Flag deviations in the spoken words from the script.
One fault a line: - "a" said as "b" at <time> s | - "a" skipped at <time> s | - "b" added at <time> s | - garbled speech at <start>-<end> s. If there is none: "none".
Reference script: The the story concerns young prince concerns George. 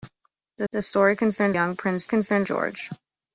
none